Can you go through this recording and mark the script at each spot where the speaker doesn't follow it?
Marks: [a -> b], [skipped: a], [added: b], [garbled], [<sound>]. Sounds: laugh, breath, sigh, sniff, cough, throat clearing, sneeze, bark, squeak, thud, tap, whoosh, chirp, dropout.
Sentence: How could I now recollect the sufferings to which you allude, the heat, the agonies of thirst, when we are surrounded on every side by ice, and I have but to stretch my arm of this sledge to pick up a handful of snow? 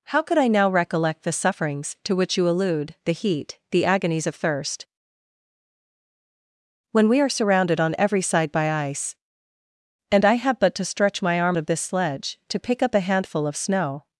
How could I now recollect the sufferings to which you allude, the heat, the agonies of thirst, when we are surrounded on every side by ice, and I have but to stretch my arm of this sledge to pick up a handful of snow?